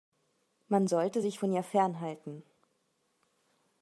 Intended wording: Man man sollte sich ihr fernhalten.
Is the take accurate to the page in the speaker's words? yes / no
no